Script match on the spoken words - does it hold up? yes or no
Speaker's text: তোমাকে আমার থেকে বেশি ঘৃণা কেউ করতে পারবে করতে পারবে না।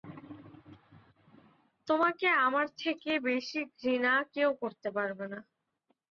no